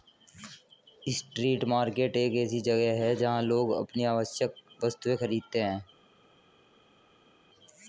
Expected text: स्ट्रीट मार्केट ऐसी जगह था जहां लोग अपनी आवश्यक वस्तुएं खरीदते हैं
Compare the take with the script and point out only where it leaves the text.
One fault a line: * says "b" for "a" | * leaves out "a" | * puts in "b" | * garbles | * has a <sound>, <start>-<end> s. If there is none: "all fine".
* puts in "एक"
* says "है" for "था"